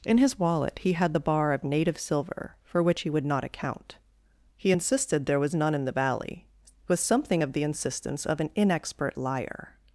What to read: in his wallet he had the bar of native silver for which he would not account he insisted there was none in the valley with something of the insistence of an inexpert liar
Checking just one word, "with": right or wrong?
right